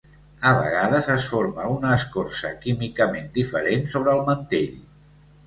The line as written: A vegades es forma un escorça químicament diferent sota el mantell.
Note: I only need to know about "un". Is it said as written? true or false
false